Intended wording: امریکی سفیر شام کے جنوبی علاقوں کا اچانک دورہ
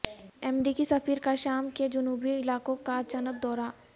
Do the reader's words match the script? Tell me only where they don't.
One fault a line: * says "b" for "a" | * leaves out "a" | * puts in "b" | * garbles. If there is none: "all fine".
* puts in "کا"